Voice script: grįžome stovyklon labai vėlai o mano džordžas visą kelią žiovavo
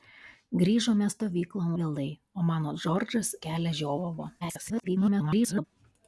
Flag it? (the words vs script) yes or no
yes